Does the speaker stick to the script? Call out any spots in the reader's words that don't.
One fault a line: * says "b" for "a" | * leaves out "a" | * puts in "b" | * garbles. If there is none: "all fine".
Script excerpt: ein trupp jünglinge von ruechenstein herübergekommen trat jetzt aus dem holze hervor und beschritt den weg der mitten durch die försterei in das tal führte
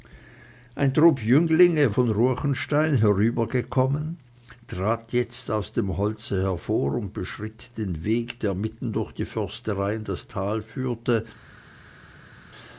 all fine